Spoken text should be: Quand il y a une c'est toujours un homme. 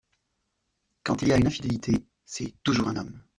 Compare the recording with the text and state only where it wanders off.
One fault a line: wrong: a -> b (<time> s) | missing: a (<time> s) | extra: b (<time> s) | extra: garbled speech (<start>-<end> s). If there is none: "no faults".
extra: infidélité (1.5 s)